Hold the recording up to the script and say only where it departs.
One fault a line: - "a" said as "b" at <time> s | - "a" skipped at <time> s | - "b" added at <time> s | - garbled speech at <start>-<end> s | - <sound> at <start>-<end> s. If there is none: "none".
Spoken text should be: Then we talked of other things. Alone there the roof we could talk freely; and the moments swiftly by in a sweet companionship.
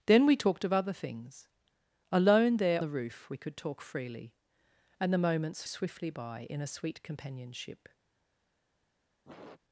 - sniff at 9.3-9.6 s